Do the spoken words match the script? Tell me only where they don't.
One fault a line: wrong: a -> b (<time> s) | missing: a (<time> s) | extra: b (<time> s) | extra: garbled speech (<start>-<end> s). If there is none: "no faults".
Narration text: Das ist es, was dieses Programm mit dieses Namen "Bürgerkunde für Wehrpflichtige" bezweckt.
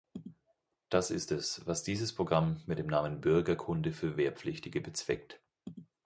wrong: dieses -> dem (2.8 s)